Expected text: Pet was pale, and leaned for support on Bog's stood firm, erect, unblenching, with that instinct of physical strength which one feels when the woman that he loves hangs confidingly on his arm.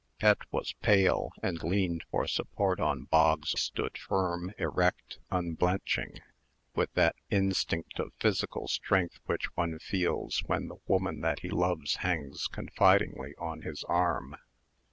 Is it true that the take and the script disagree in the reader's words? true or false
false